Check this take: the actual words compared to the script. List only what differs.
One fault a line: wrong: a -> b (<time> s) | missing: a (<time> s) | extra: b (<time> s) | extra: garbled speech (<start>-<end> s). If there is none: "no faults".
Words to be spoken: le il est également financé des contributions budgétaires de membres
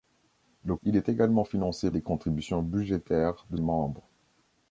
no faults